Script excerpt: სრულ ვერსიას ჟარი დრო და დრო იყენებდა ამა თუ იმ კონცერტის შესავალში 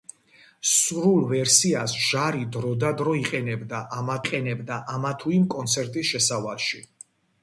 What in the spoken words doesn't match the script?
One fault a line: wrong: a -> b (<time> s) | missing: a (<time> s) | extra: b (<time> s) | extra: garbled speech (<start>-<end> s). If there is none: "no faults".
extra: იყენებდა ამა (4.3 s)